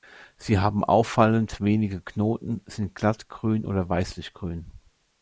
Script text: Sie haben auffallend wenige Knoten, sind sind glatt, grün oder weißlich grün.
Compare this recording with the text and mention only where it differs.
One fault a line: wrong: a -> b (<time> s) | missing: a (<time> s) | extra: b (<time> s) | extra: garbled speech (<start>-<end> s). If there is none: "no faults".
missing: sind (2.9 s)